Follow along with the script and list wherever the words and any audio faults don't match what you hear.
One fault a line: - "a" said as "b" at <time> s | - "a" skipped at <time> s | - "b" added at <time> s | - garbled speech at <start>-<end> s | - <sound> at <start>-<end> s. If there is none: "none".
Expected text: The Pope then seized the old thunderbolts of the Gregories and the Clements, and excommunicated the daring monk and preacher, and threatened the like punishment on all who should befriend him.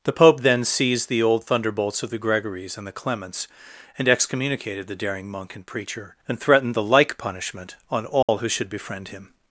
- dropout at 8.2-8.3 s